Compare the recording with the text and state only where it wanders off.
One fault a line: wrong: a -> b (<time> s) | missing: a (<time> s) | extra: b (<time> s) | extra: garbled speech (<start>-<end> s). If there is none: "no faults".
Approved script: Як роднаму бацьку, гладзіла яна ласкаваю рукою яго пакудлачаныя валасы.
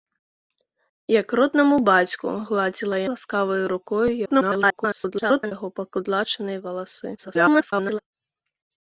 missing: яна (3.0 s)
extra: garbled speech (4.3-5.5 s)
extra: garbled speech (7.2-8.0 s)